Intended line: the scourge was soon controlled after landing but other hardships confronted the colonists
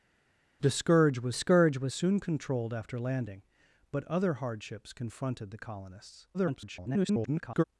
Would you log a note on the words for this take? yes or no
yes